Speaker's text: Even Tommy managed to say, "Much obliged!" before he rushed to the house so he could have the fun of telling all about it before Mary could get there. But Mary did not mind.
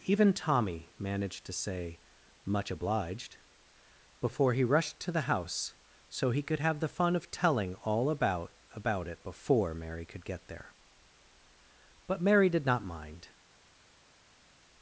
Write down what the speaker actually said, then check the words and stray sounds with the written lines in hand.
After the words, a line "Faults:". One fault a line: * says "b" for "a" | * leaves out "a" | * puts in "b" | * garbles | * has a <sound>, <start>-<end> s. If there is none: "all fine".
Even Tommy managed to say, "Much obliged!" before he rushed to the house so he could have the fun of telling all about about it before Mary could get there. But Mary did not mind.
Faults:
* puts in "about"